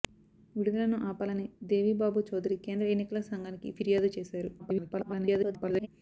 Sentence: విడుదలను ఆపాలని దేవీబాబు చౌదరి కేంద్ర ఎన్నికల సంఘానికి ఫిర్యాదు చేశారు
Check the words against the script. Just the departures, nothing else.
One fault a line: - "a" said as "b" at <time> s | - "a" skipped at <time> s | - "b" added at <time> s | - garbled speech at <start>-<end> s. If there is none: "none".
- garbled speech at 4.6-5.9 s